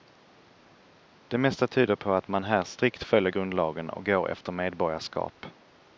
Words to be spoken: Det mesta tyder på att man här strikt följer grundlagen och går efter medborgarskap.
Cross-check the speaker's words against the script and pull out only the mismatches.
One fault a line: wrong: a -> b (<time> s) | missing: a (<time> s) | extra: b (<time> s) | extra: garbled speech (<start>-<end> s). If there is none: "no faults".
no faults